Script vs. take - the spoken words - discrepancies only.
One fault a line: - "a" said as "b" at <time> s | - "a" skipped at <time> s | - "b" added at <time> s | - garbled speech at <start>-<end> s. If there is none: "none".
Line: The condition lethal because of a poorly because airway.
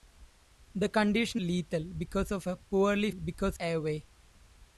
none